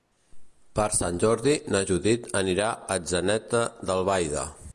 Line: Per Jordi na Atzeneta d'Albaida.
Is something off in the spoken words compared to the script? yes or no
yes